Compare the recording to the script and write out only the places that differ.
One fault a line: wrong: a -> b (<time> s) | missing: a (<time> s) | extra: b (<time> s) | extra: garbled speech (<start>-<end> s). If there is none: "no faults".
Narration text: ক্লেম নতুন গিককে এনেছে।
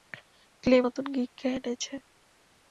no faults